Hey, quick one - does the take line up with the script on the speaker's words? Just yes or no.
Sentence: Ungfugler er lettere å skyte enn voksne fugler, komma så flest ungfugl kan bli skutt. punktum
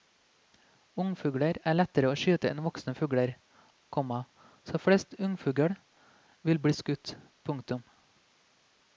no